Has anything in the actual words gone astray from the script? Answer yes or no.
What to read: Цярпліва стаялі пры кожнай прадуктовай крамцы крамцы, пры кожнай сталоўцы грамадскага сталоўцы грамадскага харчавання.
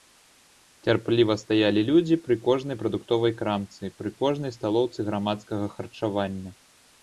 yes